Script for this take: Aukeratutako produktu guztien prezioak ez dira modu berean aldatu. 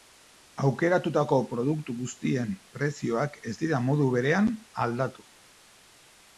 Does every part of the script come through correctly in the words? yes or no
yes